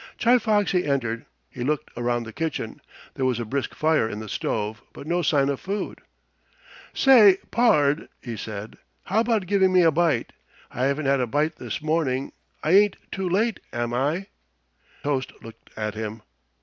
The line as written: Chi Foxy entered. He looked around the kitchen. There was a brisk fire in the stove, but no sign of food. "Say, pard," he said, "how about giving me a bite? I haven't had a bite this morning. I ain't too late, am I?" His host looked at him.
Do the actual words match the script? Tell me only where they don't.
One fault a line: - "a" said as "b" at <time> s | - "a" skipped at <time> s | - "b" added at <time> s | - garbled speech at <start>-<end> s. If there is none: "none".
- "His" skipped at 14.3 s